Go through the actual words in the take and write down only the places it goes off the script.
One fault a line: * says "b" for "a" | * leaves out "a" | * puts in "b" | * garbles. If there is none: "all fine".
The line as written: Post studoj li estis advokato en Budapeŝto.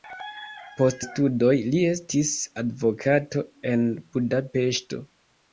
all fine